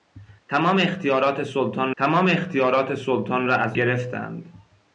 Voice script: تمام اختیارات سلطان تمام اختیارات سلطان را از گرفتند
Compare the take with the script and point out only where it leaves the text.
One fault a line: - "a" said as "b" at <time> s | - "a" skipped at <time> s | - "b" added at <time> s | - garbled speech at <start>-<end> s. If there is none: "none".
none